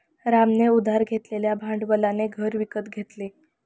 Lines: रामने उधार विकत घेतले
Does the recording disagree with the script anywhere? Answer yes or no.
yes